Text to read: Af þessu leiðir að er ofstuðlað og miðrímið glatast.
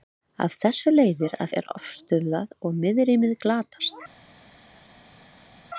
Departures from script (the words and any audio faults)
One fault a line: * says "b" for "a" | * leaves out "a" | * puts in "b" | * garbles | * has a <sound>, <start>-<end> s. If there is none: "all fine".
all fine